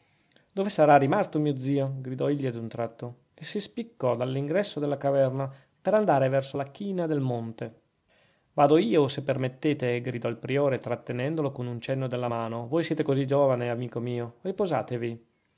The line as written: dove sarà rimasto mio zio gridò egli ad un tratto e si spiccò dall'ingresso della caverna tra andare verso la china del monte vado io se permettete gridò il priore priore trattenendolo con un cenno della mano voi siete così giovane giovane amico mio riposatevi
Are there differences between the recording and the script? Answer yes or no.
yes